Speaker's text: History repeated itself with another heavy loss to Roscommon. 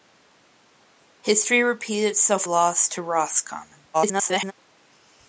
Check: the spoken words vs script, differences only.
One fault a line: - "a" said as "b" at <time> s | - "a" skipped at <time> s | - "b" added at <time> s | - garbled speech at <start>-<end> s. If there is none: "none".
- "with another heavy" skipped at 2.5 s
- garbled speech at 3.9-4.5 s